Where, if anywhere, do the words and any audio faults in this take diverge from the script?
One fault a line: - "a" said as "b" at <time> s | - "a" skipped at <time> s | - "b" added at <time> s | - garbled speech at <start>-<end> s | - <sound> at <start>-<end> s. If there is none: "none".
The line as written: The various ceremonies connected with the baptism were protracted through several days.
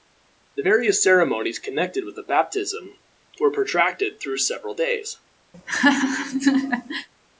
- laugh at 5.5-7.1 s